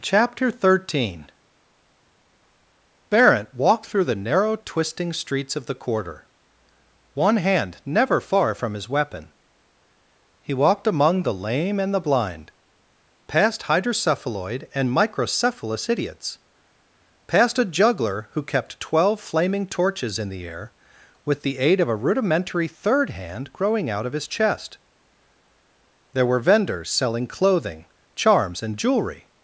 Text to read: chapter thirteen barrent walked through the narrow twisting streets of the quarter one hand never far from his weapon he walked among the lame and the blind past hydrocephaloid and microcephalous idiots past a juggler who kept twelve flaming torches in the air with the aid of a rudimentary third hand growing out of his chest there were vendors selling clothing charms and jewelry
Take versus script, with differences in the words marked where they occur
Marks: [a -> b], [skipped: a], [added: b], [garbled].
chapter thirteen barrent walked through the narrow twisting streets of the quarter one hand never far from his weapon he walked among the lame and the blind past hydrocephaloid and microcephalous idiots past a juggler who kept twelve flaming torches in the air with the aid of a rudimentary third hand growing out of his chest there were vendors selling clothing charms and jewelry